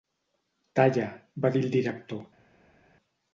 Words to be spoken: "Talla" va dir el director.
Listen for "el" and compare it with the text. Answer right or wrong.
right